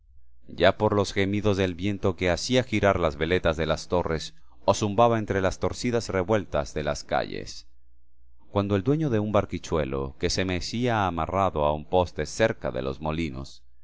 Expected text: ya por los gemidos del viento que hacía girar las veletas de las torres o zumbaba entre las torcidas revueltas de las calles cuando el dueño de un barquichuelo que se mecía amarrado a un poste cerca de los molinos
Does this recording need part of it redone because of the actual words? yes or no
no